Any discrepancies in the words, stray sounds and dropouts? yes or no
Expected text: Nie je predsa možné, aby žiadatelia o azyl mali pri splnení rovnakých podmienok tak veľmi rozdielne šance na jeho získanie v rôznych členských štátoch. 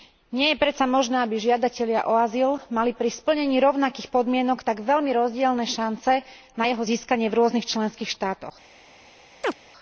yes